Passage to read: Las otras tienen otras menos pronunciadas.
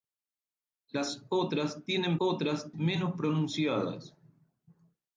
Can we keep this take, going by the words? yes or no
yes